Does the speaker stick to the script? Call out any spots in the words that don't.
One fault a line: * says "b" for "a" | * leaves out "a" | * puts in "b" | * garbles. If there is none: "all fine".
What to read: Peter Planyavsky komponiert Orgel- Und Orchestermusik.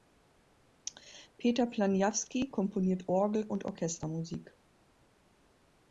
all fine